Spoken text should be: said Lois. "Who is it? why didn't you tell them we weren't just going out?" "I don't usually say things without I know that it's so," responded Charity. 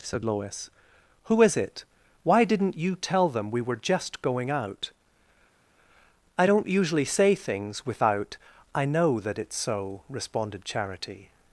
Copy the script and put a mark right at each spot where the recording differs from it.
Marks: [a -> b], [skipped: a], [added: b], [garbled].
said Lois. "Who is it? why didn't you tell them we [weren't -> were] just going out?" "I don't usually say things without I know that it's so," responded Charity.